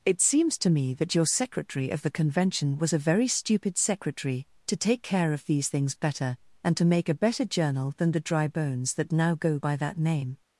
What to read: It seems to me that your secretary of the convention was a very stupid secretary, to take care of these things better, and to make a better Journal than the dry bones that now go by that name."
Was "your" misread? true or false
false